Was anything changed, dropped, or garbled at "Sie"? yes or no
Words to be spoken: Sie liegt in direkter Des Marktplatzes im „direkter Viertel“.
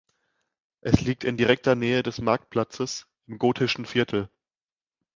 yes